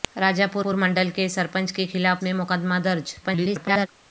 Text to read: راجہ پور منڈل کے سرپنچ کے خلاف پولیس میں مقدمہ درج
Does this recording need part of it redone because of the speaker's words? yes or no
yes